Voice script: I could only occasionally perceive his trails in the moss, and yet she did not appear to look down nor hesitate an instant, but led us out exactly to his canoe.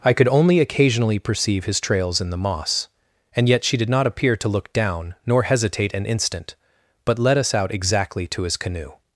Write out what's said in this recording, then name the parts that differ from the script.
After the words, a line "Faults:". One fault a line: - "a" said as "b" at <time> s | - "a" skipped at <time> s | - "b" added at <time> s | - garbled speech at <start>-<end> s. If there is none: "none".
I could only occasionally perceive his trails in the moss, and yet she did not appear to look down nor hesitate an instant, but led us out exactly to his canoe.
Faults:
none